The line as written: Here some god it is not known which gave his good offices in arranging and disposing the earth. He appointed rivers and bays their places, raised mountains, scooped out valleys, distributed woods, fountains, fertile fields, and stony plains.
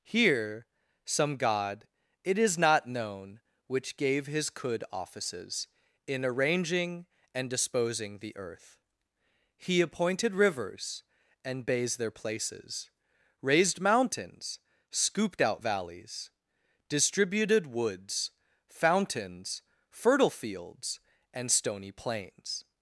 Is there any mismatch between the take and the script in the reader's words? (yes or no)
yes